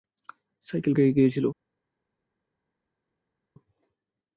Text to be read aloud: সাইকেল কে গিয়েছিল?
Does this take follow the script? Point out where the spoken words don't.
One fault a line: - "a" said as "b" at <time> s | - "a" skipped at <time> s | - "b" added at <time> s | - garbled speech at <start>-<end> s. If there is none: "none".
none